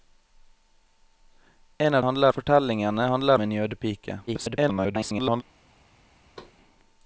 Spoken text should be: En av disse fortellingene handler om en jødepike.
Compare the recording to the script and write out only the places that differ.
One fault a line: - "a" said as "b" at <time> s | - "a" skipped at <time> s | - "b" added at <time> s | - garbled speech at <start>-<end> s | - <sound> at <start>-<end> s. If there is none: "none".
- "disse" said as "handler" at 2.0 s
- "om" skipped at 3.4 s
- garbled speech at 4.3-5.4 s
- thud at 6.4-6.6 s